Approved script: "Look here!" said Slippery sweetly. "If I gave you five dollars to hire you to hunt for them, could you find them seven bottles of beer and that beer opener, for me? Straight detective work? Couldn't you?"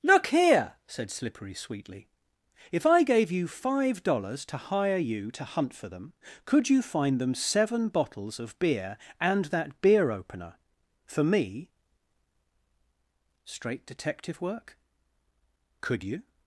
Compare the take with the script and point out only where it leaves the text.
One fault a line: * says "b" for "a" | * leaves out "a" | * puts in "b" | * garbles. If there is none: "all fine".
* says "Could" for "Couldn't"